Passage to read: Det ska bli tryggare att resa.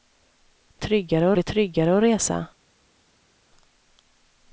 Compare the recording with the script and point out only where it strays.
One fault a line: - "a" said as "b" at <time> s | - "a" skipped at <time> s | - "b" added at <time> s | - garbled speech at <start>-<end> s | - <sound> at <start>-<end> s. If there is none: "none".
- "ska" said as "tryggare" at 0.8 s